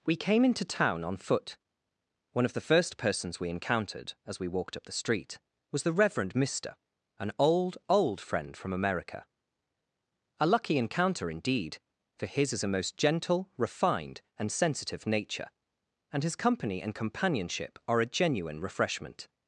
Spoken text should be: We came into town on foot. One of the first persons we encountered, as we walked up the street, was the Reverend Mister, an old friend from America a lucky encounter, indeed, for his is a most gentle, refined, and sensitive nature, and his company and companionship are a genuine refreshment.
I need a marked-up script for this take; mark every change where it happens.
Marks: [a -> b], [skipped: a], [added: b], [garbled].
We came into town on foot. One of the first persons we encountered, as we walked up the street, was the Reverend Mister, an old [added: old] friend from America a lucky encounter, indeed, for his is a most gentle, refined, and sensitive nature, and his company and companionship are a genuine refreshment.